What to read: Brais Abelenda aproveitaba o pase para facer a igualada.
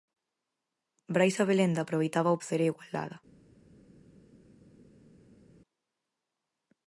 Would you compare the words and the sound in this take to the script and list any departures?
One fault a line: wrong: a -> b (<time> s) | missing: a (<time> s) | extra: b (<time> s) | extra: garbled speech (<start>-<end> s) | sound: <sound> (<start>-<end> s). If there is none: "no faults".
missing: pase para (2.4 s)